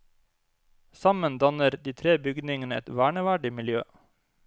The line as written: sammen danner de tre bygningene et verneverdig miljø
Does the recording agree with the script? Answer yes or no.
yes